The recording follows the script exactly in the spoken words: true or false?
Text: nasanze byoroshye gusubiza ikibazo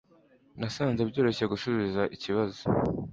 true